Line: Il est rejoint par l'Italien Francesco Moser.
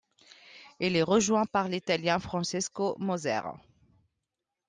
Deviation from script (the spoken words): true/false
false